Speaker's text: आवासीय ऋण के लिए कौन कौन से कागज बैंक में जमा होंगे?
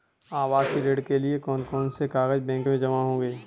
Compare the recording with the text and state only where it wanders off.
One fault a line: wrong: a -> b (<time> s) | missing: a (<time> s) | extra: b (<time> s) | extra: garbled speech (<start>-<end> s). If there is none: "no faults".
no faults